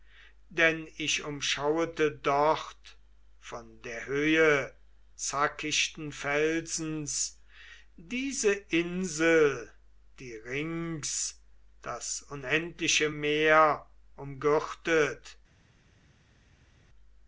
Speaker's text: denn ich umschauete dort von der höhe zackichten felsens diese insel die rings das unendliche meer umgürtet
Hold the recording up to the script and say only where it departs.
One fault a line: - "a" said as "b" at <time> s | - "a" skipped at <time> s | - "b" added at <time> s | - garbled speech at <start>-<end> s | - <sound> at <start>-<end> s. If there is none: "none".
none